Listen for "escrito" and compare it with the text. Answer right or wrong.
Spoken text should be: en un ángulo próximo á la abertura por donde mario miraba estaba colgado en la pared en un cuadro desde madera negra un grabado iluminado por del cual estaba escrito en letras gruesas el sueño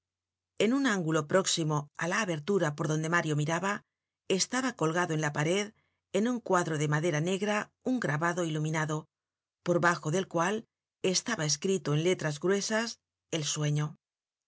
right